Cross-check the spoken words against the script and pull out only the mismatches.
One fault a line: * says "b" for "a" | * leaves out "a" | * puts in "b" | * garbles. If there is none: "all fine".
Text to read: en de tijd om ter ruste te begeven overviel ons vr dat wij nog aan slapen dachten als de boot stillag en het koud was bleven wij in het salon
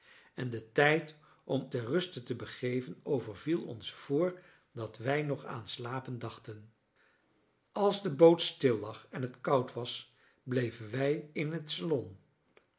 all fine